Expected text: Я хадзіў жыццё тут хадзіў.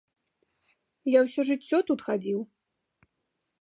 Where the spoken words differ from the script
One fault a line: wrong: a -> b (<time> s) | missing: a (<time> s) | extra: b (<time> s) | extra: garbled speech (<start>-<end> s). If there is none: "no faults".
wrong: хадзіў -> ўсё (1.3 s)